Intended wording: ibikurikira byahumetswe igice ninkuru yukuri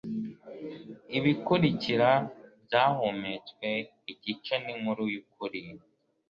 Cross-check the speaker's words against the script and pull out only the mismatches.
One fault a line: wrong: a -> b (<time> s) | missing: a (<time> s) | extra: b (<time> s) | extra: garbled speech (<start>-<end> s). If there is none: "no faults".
no faults